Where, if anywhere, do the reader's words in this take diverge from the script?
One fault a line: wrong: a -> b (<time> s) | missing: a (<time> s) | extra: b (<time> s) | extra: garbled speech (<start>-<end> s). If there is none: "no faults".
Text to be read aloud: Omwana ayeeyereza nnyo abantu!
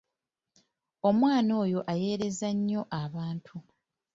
extra: oyo (1.6 s)